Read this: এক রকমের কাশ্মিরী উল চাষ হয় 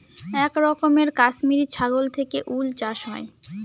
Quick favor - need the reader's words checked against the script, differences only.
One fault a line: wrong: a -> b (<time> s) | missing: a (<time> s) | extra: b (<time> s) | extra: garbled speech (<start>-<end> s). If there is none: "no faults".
extra: ছাগল থেকে (1.7 s)